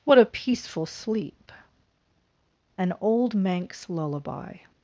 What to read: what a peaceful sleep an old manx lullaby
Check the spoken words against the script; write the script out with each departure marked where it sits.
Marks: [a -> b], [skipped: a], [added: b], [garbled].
what a peaceful sleep an old manx lullaby